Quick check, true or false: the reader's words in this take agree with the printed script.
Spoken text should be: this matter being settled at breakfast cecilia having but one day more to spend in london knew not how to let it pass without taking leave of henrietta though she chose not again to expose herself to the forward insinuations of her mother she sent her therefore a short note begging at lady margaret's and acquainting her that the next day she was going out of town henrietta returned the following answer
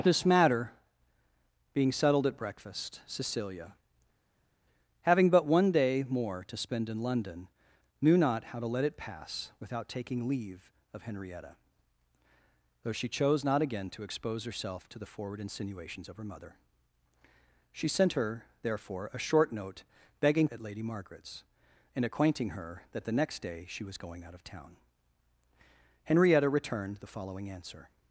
true